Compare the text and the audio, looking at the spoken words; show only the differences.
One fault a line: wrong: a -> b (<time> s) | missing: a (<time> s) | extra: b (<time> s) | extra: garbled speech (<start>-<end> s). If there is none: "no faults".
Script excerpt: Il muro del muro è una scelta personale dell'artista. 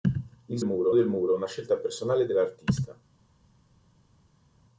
no faults